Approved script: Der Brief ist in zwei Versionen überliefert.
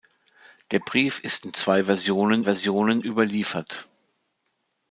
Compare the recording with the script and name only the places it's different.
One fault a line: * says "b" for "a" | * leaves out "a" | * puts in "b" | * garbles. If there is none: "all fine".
* puts in "Versionen"